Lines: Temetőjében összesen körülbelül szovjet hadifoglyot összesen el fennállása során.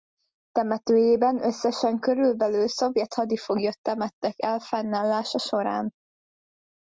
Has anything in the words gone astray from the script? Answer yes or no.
yes